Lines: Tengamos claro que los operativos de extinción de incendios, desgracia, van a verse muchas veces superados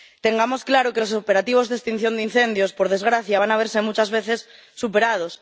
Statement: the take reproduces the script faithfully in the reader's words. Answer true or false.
false